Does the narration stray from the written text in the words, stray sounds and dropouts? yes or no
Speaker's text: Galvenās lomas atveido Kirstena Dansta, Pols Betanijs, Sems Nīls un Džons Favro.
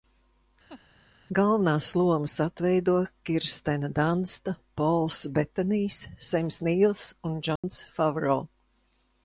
yes